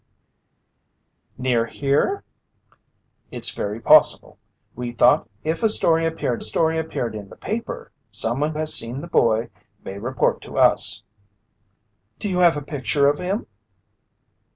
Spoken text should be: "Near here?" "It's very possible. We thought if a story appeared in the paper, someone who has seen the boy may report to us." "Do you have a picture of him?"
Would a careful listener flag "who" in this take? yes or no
yes